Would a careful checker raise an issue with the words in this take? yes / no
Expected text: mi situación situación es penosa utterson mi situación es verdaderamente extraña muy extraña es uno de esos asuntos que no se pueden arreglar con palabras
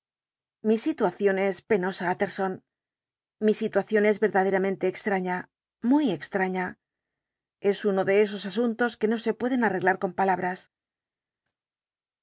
yes